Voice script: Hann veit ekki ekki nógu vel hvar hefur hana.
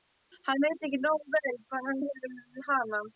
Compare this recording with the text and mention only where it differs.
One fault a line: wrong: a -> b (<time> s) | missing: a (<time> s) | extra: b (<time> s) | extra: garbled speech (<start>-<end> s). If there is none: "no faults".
missing: ekki (1.0 s)
extra: hann (1.9 s)